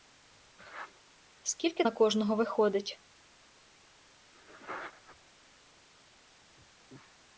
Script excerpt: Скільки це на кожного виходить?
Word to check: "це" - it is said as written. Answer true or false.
false